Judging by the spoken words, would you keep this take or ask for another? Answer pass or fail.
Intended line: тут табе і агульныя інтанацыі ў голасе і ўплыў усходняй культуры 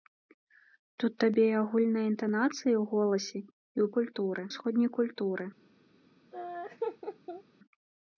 fail